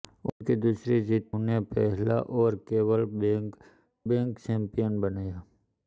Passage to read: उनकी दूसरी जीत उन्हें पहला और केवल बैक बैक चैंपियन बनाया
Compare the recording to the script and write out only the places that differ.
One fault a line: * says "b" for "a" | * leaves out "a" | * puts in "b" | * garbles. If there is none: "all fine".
all fine